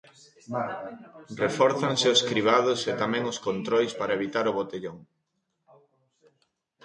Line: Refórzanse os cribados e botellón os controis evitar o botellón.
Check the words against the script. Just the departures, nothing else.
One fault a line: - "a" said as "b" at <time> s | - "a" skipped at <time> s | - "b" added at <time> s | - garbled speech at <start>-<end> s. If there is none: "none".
- "botellón" said as "tamén" at 3.0 s
- "para" added at 4.0 s